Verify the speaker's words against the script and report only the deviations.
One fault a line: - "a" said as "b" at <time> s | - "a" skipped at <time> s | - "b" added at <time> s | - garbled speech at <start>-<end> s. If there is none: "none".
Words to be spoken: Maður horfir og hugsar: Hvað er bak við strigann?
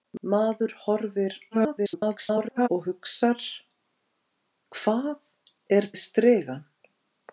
- garbled speech at 1.5-2.7 s
- "bak" skipped at 5.9 s